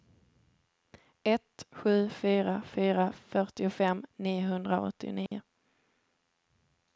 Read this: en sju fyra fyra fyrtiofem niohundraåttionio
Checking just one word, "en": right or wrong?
wrong